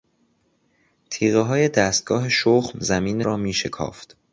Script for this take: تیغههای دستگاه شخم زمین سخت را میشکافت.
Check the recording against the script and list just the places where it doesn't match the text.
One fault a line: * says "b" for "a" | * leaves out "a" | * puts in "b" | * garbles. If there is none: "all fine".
* leaves out "سخت"